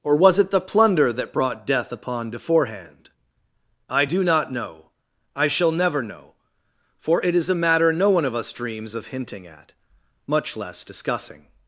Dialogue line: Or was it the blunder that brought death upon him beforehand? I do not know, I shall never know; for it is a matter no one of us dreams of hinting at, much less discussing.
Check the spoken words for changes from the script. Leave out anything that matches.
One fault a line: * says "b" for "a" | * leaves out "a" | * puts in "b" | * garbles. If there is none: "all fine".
* says "plunder" for "blunder"
* leaves out "him"